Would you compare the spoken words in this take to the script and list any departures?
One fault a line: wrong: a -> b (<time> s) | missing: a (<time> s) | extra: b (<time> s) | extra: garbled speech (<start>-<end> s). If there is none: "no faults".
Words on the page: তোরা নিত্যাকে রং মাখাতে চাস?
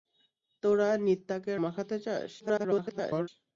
missing: রং (1.5 s)
extra: garbled speech (2.4-3.3 s)